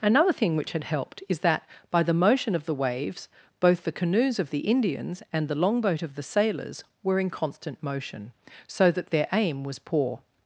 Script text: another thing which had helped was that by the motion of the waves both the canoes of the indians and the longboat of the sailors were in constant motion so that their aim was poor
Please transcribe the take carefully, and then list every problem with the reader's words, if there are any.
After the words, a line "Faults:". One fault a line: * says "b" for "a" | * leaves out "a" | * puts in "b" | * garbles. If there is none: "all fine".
another thing which had helped is that by the motion of the waves both the canoes of the indians and the longboat of the sailors were in constant motion so that their aim was poor
Faults:
* says "is" for "was"